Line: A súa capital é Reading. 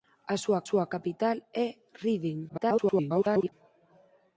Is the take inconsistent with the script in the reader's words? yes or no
yes